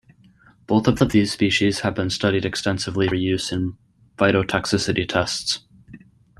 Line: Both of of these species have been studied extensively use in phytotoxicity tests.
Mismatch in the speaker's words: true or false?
false